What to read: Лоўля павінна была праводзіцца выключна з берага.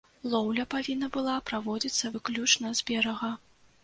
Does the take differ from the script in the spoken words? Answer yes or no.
no